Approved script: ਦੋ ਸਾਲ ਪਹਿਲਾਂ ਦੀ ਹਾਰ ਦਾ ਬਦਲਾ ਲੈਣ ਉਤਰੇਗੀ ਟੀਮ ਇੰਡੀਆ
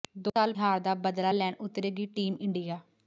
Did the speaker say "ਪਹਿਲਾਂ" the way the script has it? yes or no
no